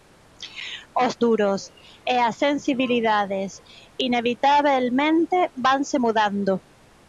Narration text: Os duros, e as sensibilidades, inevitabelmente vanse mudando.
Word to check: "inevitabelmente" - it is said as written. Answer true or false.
true